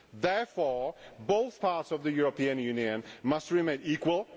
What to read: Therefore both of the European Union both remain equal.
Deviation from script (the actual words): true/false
true